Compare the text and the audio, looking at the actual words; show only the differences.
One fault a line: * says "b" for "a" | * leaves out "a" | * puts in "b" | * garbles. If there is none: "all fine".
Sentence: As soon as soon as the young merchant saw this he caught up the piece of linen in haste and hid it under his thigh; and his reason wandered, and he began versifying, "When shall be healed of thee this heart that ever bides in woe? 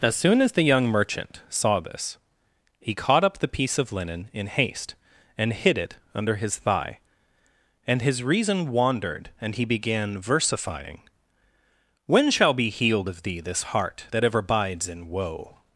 * leaves out "soon as"